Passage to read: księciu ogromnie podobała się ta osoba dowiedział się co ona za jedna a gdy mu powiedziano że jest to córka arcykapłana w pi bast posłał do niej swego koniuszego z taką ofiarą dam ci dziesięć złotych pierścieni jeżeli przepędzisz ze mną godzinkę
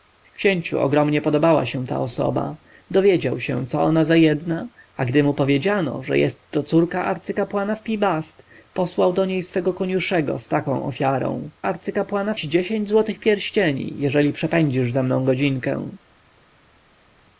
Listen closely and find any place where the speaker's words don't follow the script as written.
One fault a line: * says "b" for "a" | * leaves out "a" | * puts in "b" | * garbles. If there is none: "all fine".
* says "arcykapłana" for "dam"